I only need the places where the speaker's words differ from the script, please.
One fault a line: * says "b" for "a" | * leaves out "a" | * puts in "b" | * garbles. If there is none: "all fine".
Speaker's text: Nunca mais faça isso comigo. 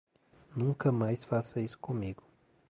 all fine